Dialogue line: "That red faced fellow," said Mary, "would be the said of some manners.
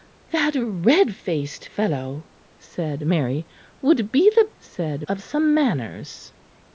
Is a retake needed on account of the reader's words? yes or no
no